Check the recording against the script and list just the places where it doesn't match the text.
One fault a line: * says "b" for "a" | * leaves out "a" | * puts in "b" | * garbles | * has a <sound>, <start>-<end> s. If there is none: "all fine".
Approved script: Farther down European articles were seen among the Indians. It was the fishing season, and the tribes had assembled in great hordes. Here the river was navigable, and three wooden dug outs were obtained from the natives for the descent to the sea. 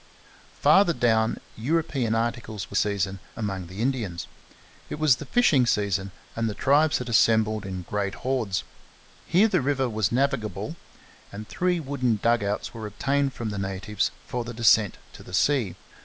* says "season" for "seen"